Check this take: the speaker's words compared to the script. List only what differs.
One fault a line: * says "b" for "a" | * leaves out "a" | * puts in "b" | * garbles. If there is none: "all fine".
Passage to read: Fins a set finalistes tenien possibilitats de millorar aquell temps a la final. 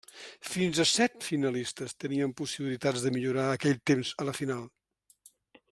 all fine